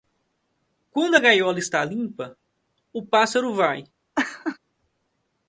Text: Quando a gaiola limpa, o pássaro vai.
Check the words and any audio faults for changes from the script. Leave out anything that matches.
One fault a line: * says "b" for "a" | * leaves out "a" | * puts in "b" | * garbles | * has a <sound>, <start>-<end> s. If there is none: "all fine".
* puts in "está"
* has a laugh, 4.2-4.6 s